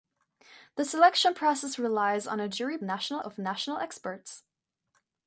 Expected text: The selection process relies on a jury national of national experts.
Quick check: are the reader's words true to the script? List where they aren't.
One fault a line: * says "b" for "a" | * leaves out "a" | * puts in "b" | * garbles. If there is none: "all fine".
all fine